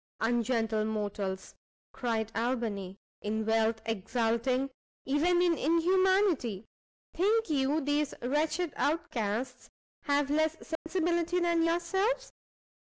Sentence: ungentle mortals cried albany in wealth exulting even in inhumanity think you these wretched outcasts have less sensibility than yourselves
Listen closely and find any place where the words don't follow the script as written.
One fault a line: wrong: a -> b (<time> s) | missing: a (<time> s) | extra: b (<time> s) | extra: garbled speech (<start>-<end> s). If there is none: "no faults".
no faults